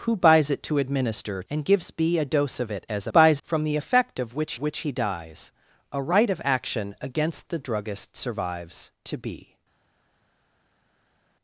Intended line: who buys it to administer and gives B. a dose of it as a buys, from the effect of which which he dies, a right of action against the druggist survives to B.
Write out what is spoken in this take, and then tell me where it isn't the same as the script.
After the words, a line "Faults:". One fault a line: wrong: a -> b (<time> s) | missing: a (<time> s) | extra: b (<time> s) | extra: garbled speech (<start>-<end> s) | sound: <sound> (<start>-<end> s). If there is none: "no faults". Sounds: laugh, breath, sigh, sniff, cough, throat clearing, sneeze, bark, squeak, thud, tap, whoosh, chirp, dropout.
who buys it to administer and gives B. a dose of it as a buys, from the effect of which which he dies, a right of action against the druggist survives to B.
Faults:
no faults